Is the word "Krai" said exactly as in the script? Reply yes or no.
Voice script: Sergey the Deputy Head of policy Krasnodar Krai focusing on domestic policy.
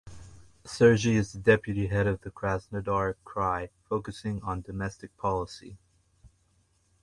yes